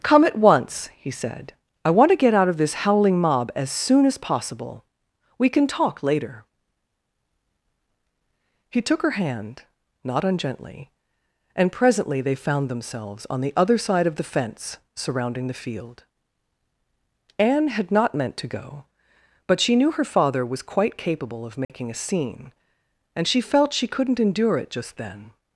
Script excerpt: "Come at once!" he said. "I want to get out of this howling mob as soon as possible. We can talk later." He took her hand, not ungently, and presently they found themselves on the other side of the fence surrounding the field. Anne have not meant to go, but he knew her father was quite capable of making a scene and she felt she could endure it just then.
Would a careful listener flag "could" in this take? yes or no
yes